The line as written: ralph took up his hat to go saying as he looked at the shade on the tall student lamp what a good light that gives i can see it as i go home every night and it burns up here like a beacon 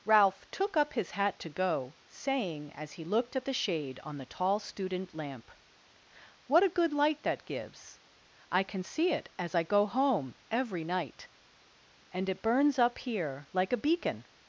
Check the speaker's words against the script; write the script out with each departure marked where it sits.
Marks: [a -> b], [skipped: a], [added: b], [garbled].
ralph took up his hat to go saying as he looked at the shade on the tall student lamp what a good light that gives i can see it as i go home every night and it burns up here like a beacon